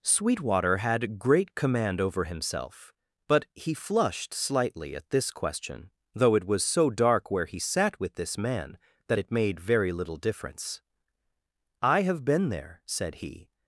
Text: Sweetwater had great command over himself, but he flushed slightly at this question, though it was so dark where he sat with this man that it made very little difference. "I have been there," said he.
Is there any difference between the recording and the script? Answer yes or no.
no